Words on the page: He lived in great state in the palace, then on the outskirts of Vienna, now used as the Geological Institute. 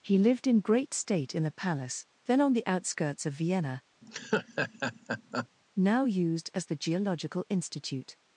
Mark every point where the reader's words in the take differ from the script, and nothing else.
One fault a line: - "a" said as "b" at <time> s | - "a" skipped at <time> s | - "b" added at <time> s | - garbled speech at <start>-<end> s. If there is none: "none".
none